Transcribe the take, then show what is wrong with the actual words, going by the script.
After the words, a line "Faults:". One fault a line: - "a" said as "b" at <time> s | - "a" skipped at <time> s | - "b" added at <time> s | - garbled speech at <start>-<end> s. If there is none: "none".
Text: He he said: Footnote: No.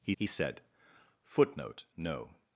He he said: Footnote: No.
Faults:
none